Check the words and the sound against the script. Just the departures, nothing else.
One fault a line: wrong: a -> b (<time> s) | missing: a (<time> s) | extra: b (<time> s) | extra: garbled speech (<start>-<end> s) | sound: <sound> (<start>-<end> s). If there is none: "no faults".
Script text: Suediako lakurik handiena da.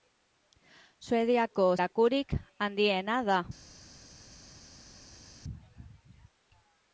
no faults